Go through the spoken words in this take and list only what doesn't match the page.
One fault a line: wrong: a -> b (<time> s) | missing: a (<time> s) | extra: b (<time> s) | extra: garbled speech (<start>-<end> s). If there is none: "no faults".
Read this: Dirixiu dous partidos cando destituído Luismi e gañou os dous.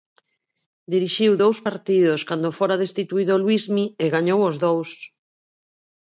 extra: fora (2.6 s)